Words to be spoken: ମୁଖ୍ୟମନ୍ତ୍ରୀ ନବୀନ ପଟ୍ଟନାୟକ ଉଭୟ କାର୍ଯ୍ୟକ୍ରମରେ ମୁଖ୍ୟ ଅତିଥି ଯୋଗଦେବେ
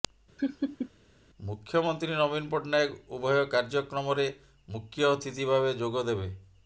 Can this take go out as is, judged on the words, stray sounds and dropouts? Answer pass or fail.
fail